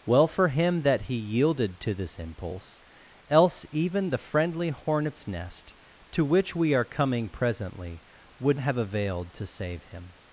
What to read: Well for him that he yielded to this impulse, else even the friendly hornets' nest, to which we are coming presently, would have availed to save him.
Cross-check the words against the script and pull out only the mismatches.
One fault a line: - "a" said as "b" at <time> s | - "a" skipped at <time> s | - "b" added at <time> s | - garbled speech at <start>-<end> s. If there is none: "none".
none